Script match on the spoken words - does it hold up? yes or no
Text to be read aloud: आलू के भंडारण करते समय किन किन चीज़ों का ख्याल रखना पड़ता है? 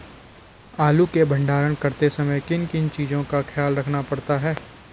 yes